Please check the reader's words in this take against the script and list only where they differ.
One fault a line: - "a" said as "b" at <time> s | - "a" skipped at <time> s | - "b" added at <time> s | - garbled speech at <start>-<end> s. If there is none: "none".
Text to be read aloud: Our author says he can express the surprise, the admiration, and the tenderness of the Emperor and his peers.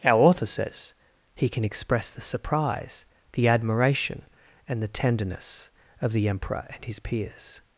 none